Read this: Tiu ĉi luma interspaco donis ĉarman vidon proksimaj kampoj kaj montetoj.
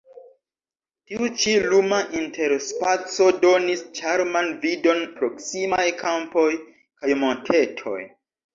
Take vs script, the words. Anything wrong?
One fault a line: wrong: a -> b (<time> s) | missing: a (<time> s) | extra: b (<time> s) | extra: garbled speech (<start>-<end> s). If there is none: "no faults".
no faults